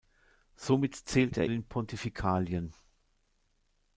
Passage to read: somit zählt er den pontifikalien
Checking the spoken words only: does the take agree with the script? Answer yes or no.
yes